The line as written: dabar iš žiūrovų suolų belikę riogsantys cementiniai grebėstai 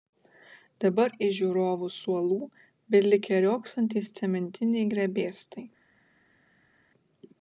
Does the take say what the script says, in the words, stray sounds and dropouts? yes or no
yes